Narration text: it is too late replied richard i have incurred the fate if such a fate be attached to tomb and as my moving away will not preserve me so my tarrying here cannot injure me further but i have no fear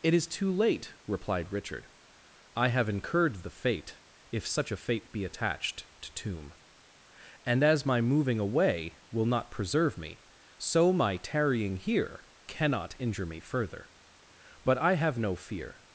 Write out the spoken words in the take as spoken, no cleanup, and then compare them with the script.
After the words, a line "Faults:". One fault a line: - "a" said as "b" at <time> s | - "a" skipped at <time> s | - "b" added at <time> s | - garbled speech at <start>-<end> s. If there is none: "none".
it is too late replied richard i have incurred the fate if such a fate be attached to tomb and as my moving away will not preserve me so my tarrying here cannot injure me further but i have no fear
Faults:
none